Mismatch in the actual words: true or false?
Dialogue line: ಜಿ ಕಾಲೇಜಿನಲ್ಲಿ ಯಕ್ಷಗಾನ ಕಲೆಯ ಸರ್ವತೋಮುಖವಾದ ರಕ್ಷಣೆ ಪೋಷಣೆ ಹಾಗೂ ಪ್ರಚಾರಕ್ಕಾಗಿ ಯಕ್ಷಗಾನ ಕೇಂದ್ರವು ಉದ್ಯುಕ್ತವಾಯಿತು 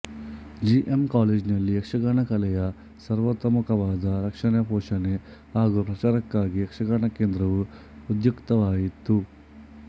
true